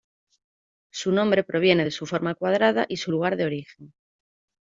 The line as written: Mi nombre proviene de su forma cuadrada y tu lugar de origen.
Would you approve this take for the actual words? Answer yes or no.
no